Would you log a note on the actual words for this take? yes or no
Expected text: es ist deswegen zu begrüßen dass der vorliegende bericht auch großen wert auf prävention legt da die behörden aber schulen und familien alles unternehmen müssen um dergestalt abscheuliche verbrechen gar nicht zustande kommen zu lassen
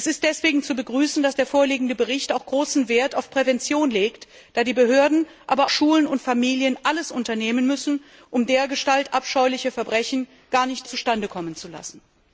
no